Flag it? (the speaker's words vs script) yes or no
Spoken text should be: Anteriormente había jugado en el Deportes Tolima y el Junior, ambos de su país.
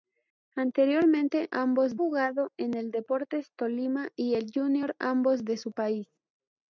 yes